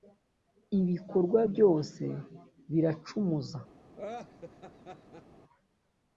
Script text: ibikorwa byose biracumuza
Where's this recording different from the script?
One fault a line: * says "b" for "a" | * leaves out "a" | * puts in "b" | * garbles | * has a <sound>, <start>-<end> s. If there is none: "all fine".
* has a laugh, 4.0-5.2 s